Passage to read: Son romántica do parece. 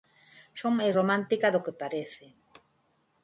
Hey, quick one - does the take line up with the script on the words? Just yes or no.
no